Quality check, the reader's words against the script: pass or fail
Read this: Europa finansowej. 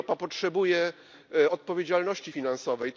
fail